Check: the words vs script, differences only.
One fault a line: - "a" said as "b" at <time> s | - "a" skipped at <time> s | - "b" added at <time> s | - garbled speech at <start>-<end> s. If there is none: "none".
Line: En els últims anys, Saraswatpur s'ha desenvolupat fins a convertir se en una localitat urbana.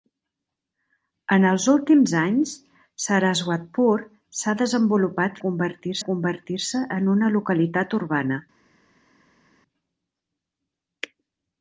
- "fins" said as "convertir" at 5.5 s